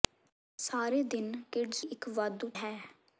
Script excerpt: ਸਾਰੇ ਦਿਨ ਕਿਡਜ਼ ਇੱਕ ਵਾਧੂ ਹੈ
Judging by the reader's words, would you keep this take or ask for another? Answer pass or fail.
pass